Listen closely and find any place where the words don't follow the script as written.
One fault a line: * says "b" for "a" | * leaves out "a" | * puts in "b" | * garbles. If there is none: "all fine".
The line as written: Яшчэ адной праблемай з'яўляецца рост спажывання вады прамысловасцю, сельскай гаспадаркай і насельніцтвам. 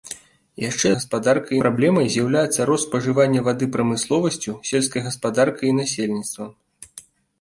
* says "гаспадаркай" for "адной"